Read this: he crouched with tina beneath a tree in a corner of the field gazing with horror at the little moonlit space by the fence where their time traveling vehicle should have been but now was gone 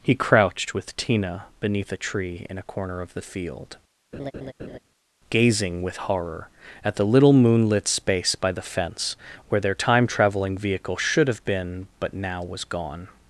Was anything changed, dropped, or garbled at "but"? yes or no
no